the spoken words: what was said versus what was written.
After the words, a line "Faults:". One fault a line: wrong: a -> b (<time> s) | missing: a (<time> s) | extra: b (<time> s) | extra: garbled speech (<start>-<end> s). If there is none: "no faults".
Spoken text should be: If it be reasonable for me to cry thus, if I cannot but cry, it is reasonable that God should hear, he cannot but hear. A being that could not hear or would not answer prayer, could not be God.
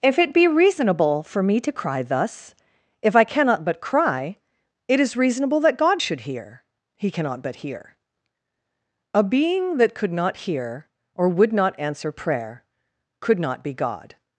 If it be reasonable for me to cry thus, if I cannot but cry, it is reasonable that God should hear, he cannot but hear. A being that could not hear or would not answer prayer, could not be God.
Faults:
no faults